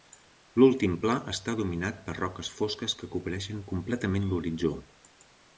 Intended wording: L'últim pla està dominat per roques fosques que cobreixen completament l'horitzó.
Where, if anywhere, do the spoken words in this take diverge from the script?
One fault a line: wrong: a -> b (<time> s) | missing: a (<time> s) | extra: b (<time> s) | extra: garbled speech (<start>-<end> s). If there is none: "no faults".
no faults